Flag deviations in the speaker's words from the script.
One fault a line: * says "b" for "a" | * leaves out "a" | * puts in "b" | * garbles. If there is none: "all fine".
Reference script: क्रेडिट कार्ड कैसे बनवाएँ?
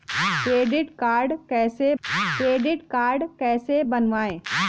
* puts in "क्रेडिट कार्ड कैसे"